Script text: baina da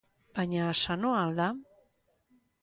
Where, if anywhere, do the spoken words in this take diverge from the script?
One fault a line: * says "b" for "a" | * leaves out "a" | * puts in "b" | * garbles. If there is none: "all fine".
* puts in "sanoa al"